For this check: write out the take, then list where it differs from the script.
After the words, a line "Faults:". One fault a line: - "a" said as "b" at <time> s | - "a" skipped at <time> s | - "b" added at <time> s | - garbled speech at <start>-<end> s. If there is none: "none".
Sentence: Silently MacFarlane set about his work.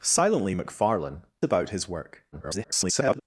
Silently MacFarlane about his work. [garbled]
Faults:
- "set" skipped at 1.2 s
- garbled speech at 2.3-3.2 s